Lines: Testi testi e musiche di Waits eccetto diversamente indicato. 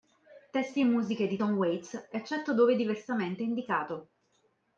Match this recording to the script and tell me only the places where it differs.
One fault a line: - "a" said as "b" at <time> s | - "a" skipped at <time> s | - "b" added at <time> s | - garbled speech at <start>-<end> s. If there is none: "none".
- "testi" skipped at 0.8 s
- "Tom" added at 1.3 s
- "dove" added at 2.5 s